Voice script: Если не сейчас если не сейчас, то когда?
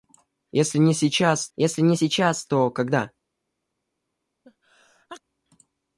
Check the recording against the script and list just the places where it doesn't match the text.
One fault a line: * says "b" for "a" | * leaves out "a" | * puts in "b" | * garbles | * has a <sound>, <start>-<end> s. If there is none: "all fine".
* has a sneeze, 4.4-5.2 s